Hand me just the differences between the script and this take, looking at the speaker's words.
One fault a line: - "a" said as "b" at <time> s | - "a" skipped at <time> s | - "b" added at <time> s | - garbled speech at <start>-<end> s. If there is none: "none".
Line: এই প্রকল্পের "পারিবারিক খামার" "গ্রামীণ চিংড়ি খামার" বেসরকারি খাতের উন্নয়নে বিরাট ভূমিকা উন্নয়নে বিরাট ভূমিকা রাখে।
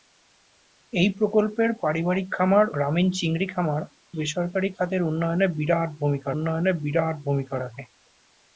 none